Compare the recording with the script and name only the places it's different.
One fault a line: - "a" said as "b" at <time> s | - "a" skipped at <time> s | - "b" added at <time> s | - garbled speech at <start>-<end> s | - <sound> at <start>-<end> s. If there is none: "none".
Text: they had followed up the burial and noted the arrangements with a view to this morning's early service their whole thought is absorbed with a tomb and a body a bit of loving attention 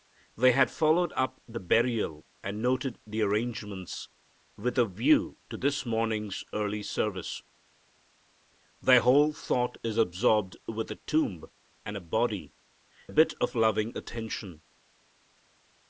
none